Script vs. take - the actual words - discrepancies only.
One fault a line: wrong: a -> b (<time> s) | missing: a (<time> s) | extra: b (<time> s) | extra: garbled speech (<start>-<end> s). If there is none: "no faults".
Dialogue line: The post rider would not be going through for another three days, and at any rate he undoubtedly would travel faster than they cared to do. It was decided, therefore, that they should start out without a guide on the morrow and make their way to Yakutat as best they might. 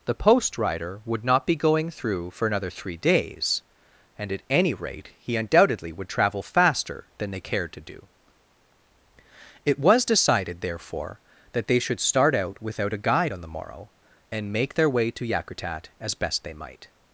no faults